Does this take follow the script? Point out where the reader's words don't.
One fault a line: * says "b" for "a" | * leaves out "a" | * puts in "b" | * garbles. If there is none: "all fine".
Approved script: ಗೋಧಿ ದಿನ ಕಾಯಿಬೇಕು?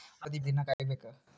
all fine